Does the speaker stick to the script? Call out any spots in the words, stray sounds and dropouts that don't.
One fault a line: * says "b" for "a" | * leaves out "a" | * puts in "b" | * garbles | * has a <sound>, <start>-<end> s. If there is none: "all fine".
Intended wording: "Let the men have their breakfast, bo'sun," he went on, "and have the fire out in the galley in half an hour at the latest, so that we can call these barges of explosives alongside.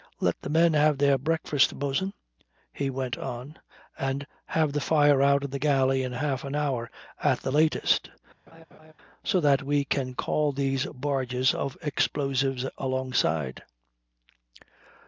* has a laugh, 8.5-8.9 s